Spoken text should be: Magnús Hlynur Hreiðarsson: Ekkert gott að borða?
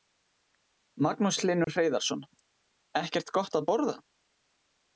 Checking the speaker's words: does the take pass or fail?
pass